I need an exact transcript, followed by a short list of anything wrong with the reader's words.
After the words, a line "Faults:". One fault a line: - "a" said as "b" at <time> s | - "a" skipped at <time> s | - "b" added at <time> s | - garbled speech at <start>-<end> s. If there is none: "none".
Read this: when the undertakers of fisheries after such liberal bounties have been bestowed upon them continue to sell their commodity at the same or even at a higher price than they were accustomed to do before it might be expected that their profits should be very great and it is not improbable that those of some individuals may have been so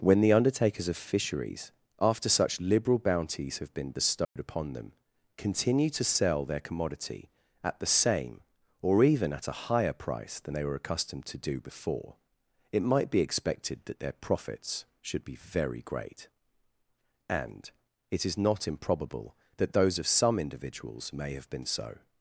when the undertakers of fisheries after such liberal bounties have been bestowed upon them continue to sell their commodity at the same or even at a higher price than they were accustomed to do before it might be expected that their profits should be very great and it is not improbable that those of some individuals may have been so
Faults:
none